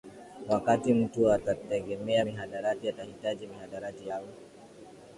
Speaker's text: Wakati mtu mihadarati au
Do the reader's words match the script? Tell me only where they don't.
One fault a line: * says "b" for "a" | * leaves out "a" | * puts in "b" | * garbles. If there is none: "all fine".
* puts in "atategemea mihadarati atahitaji"